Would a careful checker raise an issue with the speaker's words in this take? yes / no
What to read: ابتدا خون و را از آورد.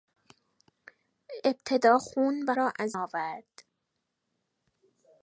no